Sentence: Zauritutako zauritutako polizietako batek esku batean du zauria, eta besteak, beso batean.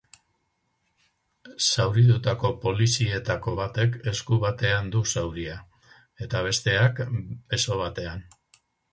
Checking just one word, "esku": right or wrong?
right